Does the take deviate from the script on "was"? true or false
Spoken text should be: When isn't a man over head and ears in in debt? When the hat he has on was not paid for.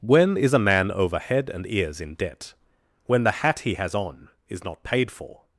true